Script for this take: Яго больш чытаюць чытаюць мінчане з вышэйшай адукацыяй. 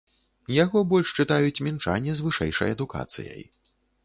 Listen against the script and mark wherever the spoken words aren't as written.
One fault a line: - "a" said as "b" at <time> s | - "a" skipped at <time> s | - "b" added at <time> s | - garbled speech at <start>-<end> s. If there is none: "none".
- "чытаюць" skipped at 1.6 s